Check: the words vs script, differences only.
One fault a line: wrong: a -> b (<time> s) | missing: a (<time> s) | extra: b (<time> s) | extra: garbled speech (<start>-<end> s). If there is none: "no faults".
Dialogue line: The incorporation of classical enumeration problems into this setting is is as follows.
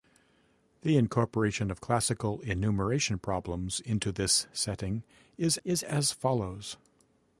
no faults